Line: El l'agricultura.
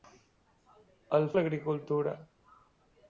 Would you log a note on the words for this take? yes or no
no